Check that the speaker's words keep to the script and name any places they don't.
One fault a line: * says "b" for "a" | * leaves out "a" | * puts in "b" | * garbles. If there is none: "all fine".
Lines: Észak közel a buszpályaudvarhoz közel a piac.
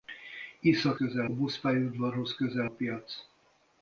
all fine